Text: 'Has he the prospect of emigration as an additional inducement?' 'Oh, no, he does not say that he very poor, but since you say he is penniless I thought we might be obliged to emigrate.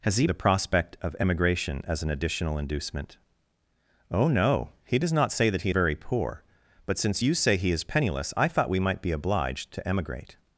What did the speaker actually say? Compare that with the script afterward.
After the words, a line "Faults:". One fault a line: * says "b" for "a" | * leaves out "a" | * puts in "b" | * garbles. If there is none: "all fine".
'Has he the prospect of emigration as an additional inducement?' 'Oh, no, he does not say that he very poor, but since you say he is penniless I thought we might be obliged to emigrate.
Faults:
all fine